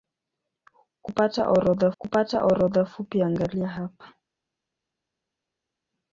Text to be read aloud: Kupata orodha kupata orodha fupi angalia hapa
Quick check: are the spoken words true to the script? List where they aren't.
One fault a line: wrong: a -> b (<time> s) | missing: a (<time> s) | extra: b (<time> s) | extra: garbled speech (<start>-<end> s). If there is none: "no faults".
no faults